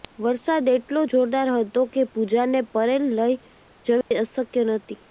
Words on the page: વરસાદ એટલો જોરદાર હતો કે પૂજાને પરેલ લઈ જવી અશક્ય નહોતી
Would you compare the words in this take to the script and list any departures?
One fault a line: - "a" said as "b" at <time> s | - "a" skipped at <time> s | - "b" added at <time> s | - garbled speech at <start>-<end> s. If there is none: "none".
none